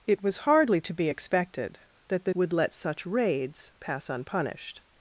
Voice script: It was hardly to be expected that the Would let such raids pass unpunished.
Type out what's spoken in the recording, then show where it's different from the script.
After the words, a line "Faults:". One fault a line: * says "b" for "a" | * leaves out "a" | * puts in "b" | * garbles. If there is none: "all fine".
It was hardly to be expected that the Would let such raids pass unpunished.
Faults:
all fine